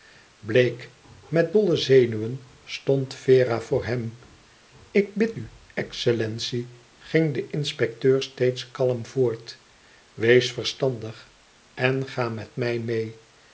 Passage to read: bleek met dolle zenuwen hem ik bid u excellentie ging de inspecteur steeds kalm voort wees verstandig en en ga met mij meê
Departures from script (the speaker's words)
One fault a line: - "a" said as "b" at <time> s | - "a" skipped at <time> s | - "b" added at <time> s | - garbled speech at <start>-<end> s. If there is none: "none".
- "stond vera voor" added at 2.6 s
- "en" skipped at 12.1 s